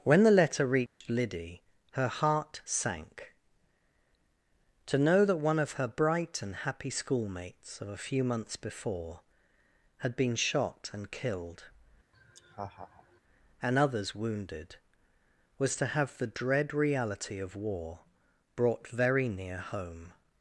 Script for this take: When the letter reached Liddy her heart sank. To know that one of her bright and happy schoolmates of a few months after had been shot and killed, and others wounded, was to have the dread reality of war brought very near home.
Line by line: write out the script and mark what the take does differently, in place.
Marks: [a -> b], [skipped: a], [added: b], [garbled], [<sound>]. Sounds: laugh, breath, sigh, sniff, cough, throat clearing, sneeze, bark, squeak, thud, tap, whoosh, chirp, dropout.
When the letter reached [dropout] Liddy her heart sank. To know that one of her bright and happy schoolmates of a few months [after -> before] had been shot and killed, [laugh] and others wounded, was to have the dread reality of war brought very near home.